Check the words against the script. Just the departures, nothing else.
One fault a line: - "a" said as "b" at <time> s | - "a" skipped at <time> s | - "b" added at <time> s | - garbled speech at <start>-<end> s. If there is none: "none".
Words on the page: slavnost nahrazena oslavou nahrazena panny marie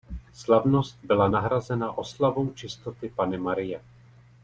- "byla" added at 1.0 s
- "nahrazena" said as "čistoty" at 2.5 s